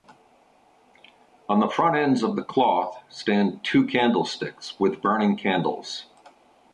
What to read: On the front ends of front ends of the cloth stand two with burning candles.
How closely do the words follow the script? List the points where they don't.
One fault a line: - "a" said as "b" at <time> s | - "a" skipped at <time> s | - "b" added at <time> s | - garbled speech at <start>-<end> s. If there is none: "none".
- "front ends of" skipped at 2.4 s
- "candlesticks" added at 3.9 s